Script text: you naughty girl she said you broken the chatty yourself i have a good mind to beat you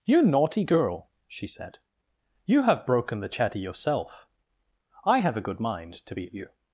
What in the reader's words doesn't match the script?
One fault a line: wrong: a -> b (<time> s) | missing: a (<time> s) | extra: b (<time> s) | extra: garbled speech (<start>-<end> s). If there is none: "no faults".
extra: have (2.6 s)